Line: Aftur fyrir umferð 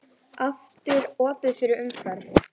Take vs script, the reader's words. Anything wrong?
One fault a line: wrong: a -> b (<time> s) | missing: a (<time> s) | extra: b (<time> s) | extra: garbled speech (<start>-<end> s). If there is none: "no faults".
extra: opið (1.3 s)